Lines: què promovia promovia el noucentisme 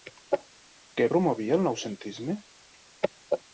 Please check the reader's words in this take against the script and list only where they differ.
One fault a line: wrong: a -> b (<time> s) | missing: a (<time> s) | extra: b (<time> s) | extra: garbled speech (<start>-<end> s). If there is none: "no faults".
missing: promovia (1.6 s)